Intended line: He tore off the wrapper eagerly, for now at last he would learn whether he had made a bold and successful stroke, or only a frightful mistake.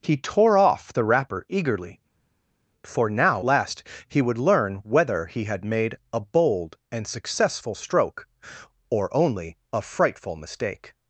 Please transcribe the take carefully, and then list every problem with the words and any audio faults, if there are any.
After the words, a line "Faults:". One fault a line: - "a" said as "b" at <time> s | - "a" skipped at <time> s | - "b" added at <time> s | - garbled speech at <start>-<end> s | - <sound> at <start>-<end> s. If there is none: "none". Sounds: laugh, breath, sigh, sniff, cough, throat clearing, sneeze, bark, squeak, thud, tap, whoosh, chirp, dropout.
He tore off the wrapper eagerly, for now last he would learn whether he had made a bold and successful stroke, or only a frightful mistake.
Faults:
- "at" skipped at 3.4 s